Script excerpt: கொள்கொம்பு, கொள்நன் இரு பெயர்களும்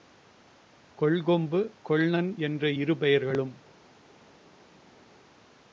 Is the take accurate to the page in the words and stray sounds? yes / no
no